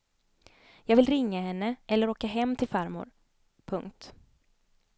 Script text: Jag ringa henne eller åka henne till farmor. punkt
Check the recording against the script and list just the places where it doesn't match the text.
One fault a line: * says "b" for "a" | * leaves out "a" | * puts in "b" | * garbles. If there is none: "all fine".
* puts in "vill"
* says "hem" for "henne"